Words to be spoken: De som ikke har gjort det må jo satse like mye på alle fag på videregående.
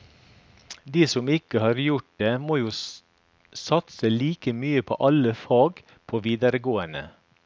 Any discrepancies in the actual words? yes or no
no